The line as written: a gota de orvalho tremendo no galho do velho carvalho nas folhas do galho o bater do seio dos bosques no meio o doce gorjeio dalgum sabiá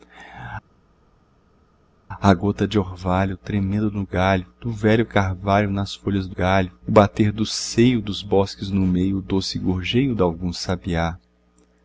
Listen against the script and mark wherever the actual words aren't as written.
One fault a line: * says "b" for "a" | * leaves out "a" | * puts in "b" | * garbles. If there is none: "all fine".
all fine